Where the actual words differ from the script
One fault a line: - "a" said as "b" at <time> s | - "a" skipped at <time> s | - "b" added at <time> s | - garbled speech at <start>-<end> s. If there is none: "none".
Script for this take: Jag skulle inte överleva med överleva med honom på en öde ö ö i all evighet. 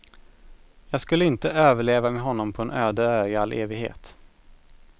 - "överleva med" skipped at 2.2 s
- "ö" skipped at 3.3 s